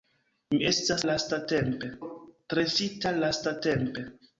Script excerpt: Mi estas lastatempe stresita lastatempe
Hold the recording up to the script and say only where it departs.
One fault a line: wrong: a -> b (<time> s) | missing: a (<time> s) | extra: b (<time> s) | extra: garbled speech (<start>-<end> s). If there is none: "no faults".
no faults